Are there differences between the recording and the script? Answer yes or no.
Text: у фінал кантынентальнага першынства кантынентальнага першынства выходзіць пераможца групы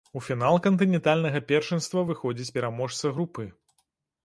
yes